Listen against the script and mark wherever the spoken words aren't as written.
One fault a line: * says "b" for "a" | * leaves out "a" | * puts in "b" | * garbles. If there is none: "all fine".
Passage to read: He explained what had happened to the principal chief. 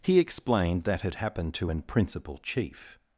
* says "that" for "what"
* says "an" for "the"